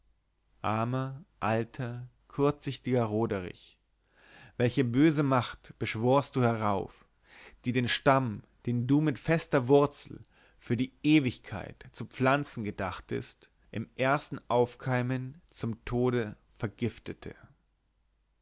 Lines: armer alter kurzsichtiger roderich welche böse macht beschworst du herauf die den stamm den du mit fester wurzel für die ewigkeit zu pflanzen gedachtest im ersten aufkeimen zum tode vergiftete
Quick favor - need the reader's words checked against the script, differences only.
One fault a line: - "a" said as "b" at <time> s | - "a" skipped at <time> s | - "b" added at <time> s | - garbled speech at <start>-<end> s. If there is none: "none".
none